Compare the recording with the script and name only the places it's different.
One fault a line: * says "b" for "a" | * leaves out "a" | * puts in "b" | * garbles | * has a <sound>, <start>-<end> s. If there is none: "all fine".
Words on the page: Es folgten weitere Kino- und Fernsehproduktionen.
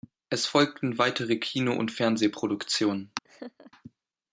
* has a laugh, 3.2-3.7 s